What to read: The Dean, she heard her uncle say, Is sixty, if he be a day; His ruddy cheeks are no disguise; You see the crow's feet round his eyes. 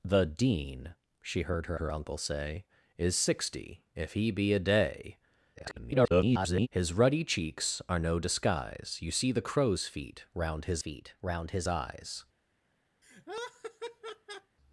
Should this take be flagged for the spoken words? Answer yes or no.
yes